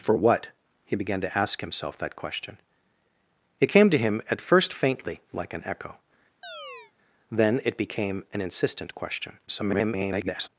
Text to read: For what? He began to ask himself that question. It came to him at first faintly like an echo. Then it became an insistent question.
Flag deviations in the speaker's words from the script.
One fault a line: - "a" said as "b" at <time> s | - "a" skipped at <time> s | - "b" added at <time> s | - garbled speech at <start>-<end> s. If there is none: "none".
- garbled speech at 9.5-10.5 s